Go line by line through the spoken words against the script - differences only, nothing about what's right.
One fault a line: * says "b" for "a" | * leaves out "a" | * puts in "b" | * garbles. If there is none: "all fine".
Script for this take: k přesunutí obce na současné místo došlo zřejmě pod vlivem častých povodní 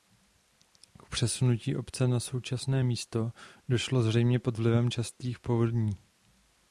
all fine